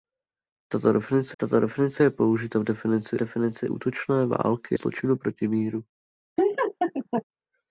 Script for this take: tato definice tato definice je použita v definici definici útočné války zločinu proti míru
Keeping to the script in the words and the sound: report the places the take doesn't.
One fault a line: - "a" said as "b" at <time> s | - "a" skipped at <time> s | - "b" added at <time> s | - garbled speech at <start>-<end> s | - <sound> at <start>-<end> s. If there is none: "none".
- laugh at 6.4-7.2 s